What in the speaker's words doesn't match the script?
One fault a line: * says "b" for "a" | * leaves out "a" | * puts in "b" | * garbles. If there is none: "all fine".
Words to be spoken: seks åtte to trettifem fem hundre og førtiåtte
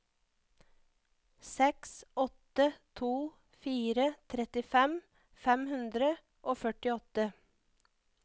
* puts in "fire"